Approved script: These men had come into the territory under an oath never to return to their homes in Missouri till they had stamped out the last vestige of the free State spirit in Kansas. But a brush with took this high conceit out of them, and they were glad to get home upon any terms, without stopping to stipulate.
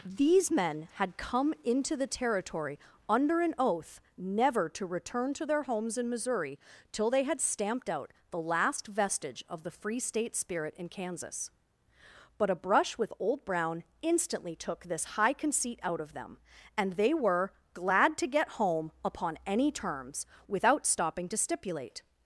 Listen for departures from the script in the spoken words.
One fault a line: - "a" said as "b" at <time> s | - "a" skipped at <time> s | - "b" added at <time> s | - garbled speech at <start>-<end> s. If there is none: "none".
- "old Brown instantly" added at 13.2 s